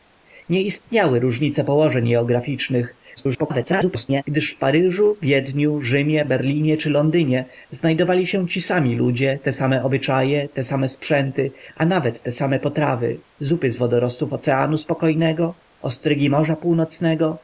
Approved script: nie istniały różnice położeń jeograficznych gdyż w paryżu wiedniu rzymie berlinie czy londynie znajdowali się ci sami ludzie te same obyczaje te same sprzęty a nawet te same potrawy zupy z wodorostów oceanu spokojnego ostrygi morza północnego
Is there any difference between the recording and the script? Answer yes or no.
yes